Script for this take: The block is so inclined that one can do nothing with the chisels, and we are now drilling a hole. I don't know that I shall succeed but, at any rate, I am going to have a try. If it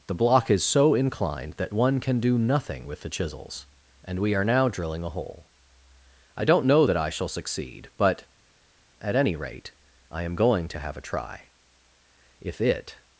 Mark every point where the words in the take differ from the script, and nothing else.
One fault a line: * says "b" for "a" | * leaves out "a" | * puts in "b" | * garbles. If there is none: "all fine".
all fine